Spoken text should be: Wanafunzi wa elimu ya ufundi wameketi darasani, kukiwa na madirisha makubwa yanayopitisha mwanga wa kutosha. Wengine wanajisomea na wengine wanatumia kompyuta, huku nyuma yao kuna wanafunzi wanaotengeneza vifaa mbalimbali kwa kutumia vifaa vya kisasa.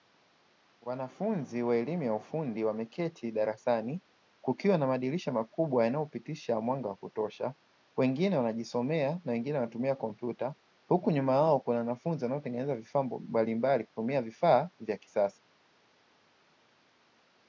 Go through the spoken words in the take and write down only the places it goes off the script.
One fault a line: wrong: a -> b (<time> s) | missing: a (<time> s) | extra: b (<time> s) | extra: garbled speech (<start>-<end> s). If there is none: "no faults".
missing: kwa (13.8 s)